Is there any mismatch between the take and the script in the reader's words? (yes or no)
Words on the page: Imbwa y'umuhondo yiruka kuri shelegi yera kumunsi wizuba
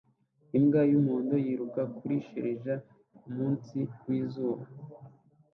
yes